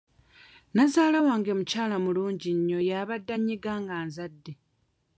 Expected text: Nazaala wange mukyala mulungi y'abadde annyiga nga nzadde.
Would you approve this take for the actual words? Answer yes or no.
no